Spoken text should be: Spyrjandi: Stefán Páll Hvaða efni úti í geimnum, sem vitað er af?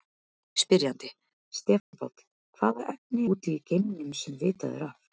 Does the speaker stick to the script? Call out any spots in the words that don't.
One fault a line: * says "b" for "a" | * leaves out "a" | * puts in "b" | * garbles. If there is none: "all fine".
all fine